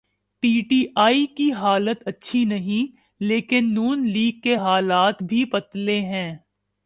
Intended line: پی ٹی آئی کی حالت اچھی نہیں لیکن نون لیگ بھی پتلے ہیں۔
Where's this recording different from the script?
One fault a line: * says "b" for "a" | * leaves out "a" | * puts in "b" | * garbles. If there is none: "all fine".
* puts in "کے حالات"